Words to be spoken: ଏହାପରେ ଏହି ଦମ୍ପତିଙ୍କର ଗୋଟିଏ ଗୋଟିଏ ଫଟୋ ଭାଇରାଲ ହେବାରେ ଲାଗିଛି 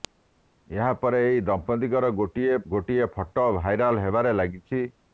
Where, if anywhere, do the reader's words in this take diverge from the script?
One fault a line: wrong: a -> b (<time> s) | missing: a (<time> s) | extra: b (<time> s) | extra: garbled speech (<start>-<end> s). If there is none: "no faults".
no faults